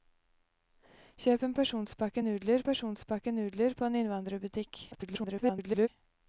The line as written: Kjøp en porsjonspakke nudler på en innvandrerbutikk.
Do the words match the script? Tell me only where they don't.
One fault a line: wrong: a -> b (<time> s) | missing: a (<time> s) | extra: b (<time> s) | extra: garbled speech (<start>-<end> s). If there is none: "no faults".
extra: porsjonspakke nudler (2.7 s)
extra: garbled speech (4.9-5.9 s)